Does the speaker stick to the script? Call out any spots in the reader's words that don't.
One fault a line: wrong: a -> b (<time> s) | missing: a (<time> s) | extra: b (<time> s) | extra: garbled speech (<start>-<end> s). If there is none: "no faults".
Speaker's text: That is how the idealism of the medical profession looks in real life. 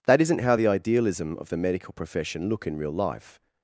wrong: is -> isn't (0.2 s)
wrong: looks -> look (2.5 s)